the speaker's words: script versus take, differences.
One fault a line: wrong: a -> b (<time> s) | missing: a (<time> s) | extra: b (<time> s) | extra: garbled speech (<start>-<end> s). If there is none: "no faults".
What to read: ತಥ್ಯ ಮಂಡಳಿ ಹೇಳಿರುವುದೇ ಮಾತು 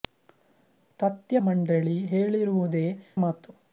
no faults